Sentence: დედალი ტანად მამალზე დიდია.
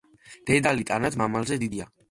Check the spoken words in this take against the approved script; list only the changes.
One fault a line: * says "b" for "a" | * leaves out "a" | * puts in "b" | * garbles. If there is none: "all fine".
all fine